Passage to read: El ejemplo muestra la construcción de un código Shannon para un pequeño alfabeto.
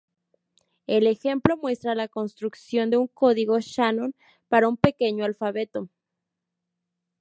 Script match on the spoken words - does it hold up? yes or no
yes